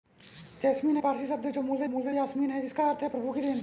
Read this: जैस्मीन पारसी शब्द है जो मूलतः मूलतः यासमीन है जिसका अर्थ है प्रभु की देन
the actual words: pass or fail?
pass